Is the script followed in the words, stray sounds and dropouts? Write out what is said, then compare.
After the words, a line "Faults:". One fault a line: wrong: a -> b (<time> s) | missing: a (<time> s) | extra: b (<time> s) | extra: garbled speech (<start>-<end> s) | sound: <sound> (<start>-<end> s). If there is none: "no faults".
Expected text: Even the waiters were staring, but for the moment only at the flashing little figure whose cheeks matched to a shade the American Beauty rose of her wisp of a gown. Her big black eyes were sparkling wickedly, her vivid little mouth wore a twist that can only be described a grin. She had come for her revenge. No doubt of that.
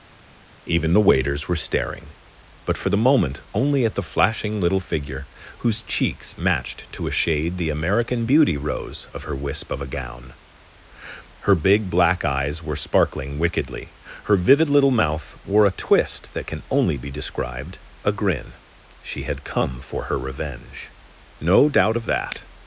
Even the waiters were staring, but for the moment only at the flashing little figure whose cheeks matched to a shade the American Beauty rose of her wisp of a gown. Her big black eyes were sparkling wickedly, her vivid little mouth wore a twist that can only be described a grin. She had come for her revenge. No doubt of that.
Faults:
no faults